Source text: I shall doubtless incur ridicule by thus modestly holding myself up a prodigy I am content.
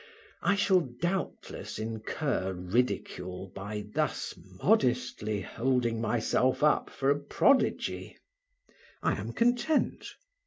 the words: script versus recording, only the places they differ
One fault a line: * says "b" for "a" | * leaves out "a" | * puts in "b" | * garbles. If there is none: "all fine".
* puts in "for"